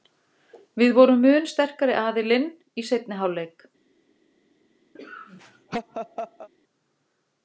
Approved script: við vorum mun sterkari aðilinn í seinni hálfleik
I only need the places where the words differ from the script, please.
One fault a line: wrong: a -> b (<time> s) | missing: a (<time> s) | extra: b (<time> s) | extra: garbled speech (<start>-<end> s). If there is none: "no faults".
no faults